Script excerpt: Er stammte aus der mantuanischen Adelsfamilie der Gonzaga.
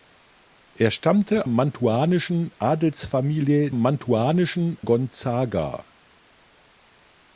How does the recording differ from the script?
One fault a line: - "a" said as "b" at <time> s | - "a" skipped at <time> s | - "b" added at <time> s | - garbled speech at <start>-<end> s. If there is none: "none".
- "aus der" skipped at 1.5 s
- "der" said as "mantuanischen" at 3.7 s